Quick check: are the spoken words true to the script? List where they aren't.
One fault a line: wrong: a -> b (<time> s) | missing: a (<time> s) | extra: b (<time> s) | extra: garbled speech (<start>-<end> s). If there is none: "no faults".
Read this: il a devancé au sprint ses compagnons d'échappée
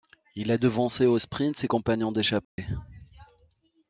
no faults